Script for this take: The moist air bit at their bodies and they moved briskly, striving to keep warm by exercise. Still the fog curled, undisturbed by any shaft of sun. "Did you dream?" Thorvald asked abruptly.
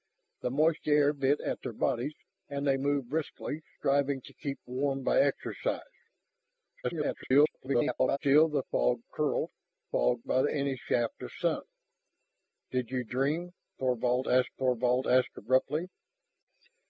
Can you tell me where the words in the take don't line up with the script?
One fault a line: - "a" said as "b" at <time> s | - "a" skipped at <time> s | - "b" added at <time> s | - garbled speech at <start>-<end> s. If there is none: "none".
- garbled speech at 6.8-8.2 s
- "undisturbed" said as "fog" at 9.9 s
- "thorvald asked" added at 14.6 s